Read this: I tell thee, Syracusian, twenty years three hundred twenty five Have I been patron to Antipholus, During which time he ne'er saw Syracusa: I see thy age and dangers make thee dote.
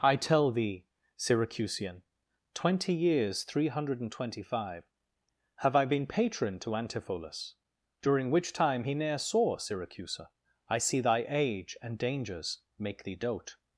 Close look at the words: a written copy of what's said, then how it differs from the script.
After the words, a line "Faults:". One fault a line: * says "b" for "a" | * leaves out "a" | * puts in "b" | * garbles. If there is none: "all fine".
I tell thee, Syracusian, twenty years three hundred and twenty five Have I been patron to Antipholus, During which time he ne'er saw Syracusa: I see thy age and dangers make thee dote.
Faults:
* puts in "and"